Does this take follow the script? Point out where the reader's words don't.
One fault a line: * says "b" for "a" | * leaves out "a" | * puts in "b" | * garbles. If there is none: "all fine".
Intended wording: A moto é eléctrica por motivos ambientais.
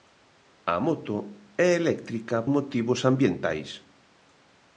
* leaves out "por"